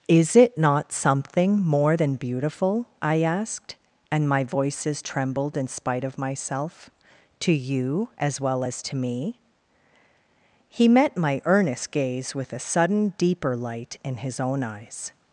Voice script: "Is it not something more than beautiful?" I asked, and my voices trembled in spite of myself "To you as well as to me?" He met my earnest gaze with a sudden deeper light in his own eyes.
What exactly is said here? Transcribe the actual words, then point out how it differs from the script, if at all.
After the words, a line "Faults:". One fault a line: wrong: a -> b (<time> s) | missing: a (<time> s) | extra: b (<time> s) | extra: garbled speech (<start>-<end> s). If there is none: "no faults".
"Is it not something more than beautiful?" I asked, and my voices trembled in spite of myself "To you as well as to me?" He met my earnest gaze with a sudden deeper light in his own eyes.
Faults:
no faults